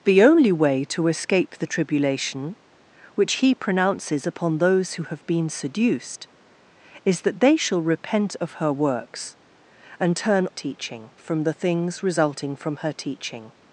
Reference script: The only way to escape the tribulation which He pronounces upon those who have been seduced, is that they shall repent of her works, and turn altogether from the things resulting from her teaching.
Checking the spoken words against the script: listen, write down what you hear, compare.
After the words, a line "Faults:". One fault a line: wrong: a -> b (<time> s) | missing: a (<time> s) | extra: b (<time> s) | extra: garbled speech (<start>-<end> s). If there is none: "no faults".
The only way to escape the tribulation which He pronounces upon those who have been seduced, is that they shall repent of her works, and turn teaching from the things resulting from her teaching.
Faults:
wrong: altogether -> teaching (10.5 s)